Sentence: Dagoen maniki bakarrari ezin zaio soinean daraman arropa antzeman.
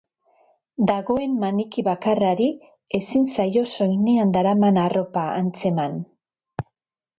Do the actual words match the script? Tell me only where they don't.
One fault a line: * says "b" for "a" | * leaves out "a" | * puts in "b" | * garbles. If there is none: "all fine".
all fine